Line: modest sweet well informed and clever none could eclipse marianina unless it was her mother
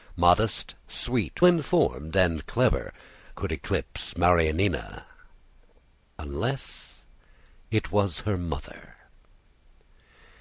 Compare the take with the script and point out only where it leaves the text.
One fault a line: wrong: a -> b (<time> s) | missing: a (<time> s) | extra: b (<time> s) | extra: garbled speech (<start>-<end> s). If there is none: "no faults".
missing: well (1.4 s)
missing: none (2.9 s)